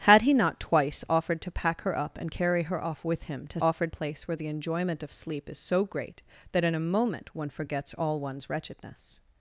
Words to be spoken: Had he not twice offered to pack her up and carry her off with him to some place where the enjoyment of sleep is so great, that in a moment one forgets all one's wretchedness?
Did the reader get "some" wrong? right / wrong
wrong